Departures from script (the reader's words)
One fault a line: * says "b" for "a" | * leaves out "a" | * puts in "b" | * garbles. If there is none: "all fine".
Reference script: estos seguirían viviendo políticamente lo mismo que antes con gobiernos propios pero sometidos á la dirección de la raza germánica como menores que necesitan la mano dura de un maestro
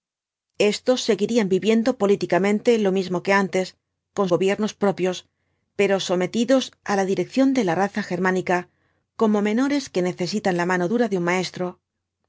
all fine